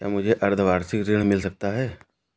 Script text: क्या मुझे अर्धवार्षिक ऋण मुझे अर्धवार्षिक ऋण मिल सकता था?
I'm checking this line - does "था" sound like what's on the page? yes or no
no